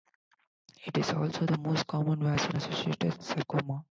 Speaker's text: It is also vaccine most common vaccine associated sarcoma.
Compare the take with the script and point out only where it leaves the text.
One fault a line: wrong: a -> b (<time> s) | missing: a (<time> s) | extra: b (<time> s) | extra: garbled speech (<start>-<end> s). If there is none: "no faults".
wrong: vaccine -> the (1.4 s)